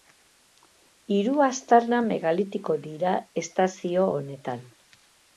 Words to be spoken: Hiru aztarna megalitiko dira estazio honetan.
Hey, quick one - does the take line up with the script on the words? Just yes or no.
yes